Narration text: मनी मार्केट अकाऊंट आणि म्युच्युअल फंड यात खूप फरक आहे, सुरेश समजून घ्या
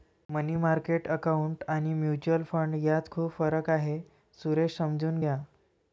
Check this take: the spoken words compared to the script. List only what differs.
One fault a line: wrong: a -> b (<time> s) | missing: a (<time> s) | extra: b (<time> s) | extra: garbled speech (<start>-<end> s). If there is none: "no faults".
no faults